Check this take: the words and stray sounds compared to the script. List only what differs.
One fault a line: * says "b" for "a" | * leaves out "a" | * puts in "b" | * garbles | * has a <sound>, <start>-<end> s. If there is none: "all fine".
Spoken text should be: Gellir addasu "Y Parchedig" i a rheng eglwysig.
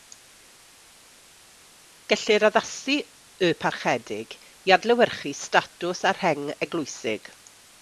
* puts in "adlewyrchu statws"